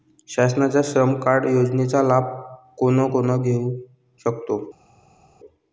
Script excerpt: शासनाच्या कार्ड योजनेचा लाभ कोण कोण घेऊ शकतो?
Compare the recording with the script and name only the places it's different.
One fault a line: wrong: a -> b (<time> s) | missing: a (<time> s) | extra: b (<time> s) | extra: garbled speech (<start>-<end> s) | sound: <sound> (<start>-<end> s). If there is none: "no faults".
extra: श्रम (0.8 s)